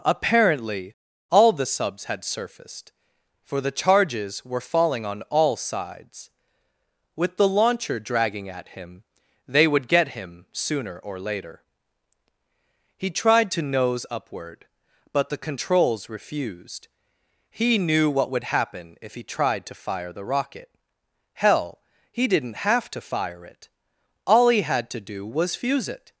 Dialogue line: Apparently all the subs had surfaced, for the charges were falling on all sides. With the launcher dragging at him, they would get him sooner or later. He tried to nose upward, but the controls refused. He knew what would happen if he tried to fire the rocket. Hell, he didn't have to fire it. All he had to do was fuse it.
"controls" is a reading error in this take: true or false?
false